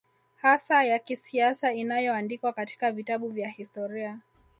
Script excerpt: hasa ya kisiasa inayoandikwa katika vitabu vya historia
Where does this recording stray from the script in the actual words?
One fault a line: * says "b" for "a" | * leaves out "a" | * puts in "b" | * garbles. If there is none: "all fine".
all fine